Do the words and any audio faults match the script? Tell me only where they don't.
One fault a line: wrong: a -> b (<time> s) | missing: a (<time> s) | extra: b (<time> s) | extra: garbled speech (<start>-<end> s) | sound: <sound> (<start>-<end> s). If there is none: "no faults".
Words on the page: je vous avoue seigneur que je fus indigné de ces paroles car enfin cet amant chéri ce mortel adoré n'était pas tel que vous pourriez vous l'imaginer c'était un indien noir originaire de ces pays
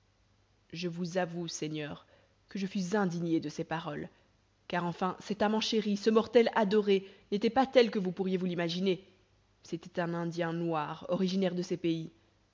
no faults